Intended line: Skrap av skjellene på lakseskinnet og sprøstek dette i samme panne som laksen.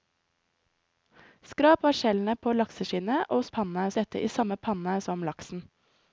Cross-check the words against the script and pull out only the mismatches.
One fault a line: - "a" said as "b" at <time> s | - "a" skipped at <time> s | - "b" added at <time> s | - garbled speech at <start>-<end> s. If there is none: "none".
- "sprøstek" said as "panne" at 3.6 s